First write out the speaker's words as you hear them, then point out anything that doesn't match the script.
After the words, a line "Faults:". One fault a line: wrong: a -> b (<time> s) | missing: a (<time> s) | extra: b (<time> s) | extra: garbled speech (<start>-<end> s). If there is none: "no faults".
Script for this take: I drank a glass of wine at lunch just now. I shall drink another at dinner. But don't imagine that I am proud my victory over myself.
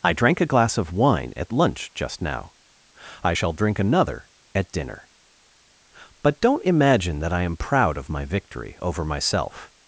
I drank a glass of wine at lunch just now. I shall drink another at dinner. But don't imagine that I am proud of my victory over myself.
Faults:
extra: of (8.0 s)